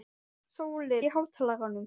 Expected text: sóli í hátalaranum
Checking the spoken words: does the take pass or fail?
pass